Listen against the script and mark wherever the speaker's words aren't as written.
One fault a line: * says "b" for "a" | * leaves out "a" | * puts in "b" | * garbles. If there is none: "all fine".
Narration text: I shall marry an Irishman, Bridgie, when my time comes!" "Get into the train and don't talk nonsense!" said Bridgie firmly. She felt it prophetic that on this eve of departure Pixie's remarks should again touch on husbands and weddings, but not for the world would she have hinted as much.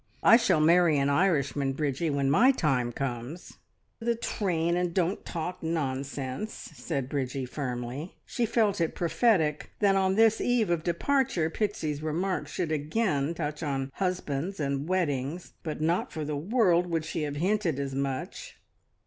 * leaves out "Get into"